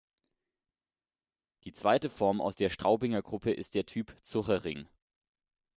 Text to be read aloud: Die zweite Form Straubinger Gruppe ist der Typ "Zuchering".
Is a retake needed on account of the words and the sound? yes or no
yes